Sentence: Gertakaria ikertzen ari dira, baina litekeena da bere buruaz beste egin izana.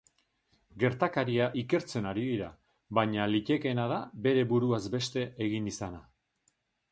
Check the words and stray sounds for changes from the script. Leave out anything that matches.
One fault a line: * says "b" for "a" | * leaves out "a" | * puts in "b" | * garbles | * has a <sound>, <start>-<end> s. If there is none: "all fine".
all fine